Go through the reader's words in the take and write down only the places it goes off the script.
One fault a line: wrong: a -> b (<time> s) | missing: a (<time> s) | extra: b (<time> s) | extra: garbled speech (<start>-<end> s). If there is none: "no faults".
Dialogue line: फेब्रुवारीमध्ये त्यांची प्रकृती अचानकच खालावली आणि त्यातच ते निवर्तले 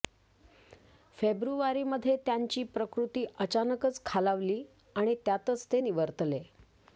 no faults